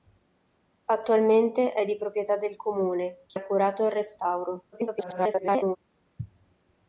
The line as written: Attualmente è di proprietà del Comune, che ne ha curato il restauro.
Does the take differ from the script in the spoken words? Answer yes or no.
yes